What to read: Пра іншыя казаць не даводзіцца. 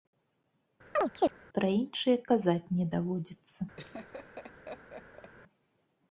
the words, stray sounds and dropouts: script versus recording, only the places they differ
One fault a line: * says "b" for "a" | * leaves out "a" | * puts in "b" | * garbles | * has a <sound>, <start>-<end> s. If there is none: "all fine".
* has a chirp, 1.0-1.3 s
* has a laugh, 3.8-5.3 s